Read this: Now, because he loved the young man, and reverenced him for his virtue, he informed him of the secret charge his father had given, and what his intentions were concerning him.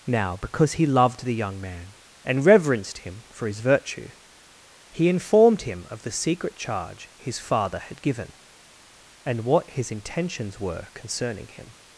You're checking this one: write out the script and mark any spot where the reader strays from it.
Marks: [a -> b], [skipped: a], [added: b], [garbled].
Now, because he loved the young man, and reverenced him for his virtue, he informed him of the secret charge his father had given, and what his intentions were concerning him.